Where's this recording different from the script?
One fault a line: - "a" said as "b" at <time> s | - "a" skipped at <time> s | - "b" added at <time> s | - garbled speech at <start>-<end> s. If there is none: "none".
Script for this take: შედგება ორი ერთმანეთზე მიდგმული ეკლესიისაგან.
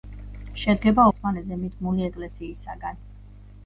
- "ორი" skipped at 1.0 s